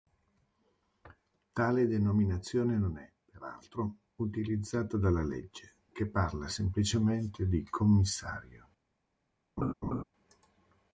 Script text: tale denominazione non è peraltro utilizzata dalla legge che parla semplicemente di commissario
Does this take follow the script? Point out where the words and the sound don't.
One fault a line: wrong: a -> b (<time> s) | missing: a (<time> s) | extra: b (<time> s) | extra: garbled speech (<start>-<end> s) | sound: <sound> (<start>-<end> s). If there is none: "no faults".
sound: laugh (9.6-10.0 s)